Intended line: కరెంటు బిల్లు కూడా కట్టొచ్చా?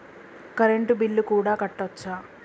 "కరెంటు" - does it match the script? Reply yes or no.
yes